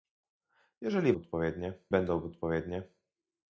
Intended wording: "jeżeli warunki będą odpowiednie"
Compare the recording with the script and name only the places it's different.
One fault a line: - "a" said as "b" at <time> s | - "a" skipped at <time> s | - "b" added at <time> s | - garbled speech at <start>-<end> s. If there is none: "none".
- "warunki" said as "odpowiednie" at 1.1 s